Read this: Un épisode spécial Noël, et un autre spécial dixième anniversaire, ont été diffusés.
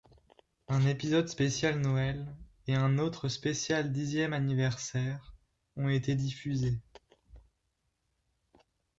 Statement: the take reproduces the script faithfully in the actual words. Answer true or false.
true